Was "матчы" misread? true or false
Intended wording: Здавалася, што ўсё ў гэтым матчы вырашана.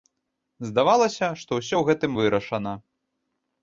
true